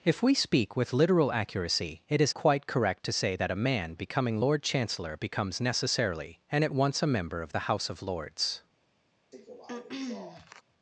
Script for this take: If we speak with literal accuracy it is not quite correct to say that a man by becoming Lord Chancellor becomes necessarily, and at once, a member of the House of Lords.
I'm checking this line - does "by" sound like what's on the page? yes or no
no